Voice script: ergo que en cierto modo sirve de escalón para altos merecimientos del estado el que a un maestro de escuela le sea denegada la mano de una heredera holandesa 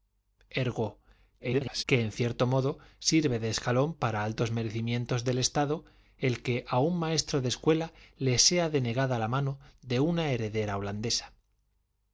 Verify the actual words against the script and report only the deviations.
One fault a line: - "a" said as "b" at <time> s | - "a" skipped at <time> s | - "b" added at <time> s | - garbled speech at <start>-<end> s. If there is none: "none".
- garbled speech at 1.4-1.8 s